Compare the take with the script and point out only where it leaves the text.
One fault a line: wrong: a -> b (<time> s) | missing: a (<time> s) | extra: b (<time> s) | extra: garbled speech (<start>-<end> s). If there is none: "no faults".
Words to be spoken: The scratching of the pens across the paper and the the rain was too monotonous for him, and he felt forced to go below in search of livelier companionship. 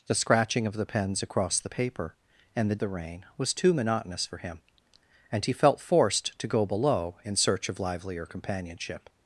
no faults